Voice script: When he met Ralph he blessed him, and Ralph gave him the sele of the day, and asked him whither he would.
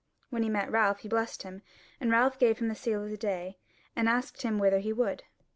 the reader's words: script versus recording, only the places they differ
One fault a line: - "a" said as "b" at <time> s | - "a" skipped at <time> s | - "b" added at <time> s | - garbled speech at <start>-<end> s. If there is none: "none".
none